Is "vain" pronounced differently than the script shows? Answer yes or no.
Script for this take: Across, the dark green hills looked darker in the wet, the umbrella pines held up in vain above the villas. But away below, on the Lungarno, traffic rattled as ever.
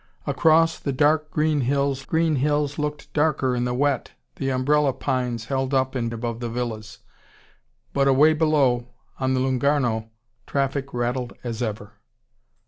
yes